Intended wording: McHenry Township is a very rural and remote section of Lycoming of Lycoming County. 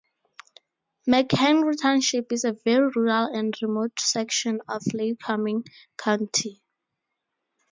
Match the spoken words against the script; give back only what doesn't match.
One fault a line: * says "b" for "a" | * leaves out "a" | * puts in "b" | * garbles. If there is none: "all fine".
* leaves out "of Lycoming"